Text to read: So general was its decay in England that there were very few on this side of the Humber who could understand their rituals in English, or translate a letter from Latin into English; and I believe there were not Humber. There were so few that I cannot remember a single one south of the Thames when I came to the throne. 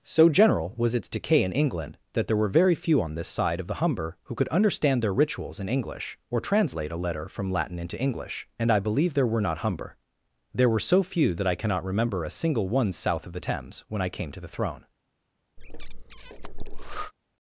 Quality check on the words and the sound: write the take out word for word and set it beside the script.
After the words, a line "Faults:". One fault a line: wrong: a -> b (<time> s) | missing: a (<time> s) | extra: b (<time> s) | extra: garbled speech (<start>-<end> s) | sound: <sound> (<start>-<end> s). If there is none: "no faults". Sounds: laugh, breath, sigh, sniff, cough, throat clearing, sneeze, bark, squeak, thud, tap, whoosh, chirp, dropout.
So general was its decay in England that there were very few on this side of the Humber who could understand their rituals in English, or translate a letter from Latin into English; and I believe there were not Humber. There were so few that I cannot remember a single one south of the Thames when I came to the throne.
Faults:
sound: breath (15.6-17.1 s)